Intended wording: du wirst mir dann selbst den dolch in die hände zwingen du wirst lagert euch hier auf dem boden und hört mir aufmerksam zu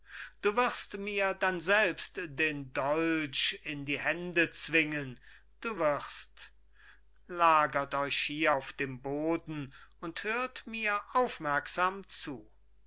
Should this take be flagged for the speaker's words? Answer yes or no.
no